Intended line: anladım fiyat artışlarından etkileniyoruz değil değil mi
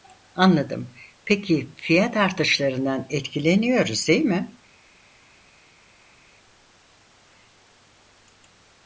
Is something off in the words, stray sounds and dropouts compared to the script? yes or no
yes